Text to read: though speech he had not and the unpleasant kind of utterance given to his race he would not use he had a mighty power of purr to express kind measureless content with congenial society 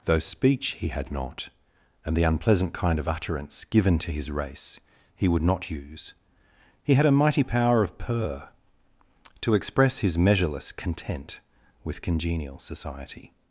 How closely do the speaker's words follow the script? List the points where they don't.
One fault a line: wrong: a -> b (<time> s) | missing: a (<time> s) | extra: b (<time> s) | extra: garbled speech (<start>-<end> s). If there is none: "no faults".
wrong: kind -> his (10.0 s)